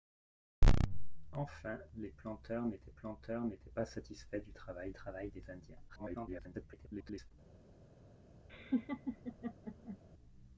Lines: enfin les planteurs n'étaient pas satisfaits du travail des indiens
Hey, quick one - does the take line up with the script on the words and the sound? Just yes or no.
no